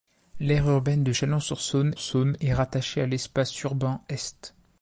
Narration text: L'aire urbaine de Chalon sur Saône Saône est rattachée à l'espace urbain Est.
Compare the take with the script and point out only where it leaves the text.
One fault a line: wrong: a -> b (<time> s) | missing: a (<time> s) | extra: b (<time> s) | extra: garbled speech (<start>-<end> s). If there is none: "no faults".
no faults